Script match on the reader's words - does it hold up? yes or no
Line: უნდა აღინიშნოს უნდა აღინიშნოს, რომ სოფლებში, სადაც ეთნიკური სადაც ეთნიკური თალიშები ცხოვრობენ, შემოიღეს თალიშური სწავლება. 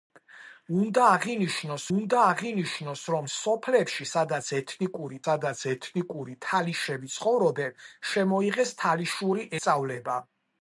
yes